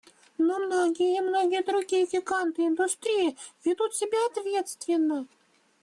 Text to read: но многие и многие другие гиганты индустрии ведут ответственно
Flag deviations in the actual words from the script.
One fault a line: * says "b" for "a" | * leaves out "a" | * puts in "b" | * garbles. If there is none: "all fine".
* puts in "себя"